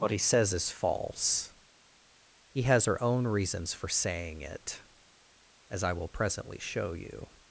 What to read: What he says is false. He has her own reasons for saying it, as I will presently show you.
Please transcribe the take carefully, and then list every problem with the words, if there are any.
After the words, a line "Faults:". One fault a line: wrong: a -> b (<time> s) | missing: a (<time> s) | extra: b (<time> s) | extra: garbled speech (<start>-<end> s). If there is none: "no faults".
What he says is false. He has her own reasons for saying it, as I will presently show you.
Faults:
no faults